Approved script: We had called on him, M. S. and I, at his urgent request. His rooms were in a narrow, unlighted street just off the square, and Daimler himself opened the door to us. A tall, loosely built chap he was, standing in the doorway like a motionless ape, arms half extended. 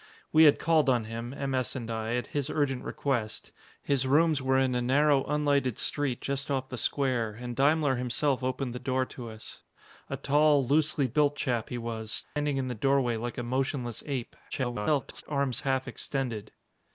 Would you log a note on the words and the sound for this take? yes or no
yes